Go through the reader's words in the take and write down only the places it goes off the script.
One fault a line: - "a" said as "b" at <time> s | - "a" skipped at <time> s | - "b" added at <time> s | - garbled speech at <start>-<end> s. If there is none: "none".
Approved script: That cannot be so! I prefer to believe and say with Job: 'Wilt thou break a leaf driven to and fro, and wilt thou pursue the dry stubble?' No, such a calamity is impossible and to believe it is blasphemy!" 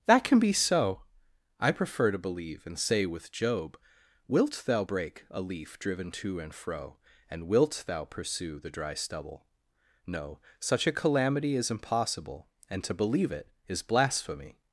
- "cannot" said as "can" at 0.2 s